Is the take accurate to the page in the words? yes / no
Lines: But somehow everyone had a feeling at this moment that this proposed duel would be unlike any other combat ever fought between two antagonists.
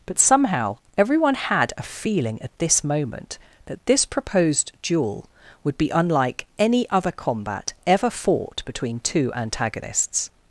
yes